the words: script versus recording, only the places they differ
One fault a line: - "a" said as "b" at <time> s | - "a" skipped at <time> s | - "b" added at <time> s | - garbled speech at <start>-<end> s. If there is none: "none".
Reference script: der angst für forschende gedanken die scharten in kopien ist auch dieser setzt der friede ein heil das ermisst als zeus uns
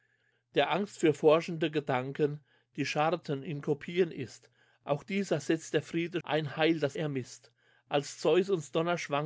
none